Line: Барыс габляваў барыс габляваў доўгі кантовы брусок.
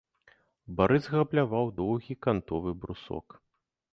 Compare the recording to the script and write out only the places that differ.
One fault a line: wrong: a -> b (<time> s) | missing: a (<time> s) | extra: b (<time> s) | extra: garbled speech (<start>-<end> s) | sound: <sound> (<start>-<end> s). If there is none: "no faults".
missing: барыс габляваў (1.7 s)